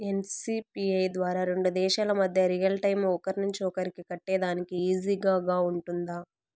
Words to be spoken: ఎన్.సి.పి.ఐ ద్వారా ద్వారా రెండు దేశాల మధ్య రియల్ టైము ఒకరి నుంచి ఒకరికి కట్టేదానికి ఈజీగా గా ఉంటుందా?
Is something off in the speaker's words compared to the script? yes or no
yes